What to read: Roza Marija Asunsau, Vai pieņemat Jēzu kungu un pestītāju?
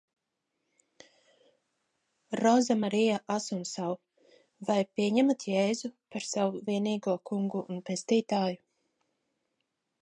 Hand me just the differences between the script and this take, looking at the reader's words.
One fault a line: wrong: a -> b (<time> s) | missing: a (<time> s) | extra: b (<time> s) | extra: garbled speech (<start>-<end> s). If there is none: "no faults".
extra: par savu vienīgo (6.1 s)